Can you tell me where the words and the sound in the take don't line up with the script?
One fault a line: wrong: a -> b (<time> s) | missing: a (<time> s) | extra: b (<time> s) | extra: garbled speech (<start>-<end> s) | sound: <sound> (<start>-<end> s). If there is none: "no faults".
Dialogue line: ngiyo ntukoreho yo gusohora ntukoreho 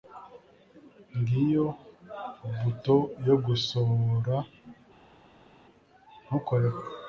wrong: ntukoreho -> buto (2.6 s)